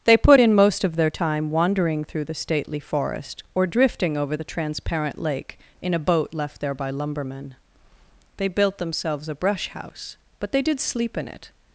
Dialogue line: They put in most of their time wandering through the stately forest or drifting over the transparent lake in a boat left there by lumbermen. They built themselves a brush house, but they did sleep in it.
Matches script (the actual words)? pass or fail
pass